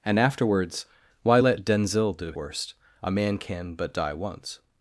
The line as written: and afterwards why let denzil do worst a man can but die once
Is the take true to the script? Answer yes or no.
yes